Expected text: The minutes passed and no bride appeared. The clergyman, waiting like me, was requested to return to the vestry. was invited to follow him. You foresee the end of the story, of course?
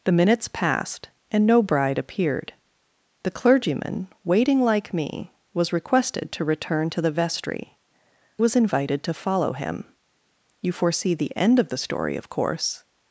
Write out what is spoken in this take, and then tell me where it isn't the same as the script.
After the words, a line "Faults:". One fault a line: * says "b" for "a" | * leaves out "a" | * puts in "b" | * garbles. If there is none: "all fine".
The minutes passed and no bride appeared. The clergyman, waiting like me, was requested to return to the vestry. was invited to follow him. You foresee the end of the story, of course?
Faults:
all fine